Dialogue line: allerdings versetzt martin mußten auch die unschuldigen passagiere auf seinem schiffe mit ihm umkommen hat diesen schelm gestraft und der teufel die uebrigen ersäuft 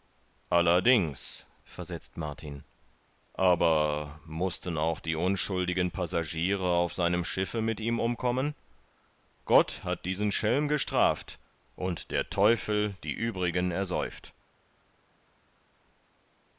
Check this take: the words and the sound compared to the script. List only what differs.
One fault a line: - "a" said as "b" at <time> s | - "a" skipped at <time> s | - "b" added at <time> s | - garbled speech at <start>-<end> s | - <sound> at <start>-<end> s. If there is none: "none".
- "aber" added at 3.3 s
- "gott" added at 9.4 s